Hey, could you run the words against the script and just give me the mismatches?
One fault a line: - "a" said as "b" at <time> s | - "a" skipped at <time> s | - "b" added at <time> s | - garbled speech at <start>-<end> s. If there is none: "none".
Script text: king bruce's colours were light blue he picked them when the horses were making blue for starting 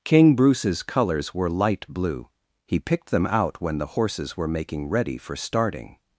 - "out" added at 3.3 s
- "blue" said as "ready" at 4.9 s